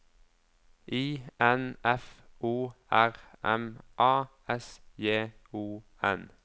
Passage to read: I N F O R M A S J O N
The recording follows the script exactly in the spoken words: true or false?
true